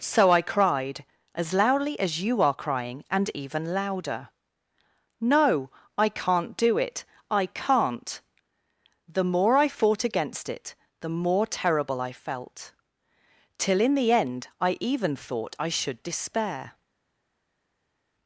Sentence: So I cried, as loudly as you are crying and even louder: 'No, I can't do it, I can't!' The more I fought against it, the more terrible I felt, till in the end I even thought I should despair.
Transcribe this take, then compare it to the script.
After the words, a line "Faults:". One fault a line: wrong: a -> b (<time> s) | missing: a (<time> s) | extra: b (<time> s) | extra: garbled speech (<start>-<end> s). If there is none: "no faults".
So I cried, as loudly as you are crying and even louder: 'No, I can't do it, I can't!' The more I fought against it, the more terrible I felt, till in the end I even thought I should despair.
Faults:
no faults